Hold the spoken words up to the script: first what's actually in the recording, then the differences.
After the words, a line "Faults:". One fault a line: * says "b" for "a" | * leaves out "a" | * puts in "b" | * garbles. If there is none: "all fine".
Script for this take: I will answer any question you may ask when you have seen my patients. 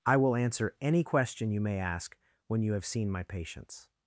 I will answer any question you may ask when you have seen my patients.
Faults:
all fine